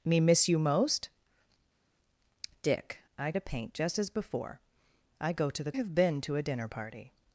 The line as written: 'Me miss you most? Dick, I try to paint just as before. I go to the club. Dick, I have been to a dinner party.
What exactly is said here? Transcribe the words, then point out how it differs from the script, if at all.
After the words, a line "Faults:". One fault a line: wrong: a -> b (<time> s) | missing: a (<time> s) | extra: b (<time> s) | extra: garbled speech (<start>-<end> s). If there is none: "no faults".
'Me miss you most? Dick, I to paint just as before. I go to the have been to a dinner party.
Faults:
missing: try (3.3 s)
missing: club Dick I (5.7 s)